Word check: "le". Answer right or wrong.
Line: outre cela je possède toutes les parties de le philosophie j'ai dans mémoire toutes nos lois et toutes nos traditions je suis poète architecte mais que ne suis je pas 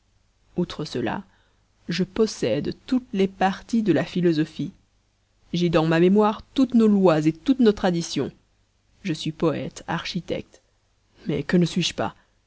wrong